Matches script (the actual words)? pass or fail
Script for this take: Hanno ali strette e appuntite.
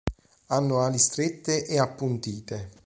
pass